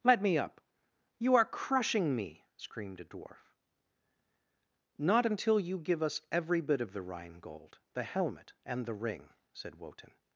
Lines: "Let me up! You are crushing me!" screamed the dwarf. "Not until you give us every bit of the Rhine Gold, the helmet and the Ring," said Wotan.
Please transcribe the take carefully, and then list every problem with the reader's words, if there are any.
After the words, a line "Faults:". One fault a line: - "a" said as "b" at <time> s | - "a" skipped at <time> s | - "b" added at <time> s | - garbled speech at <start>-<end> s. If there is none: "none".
"Let me up! You are crushing me!" screamed a dwarf. "Not until you give us every bit of the Rhine Gold, the helmet and the Ring," said Wotan.
Faults:
- "the" said as "a" at 3.0 s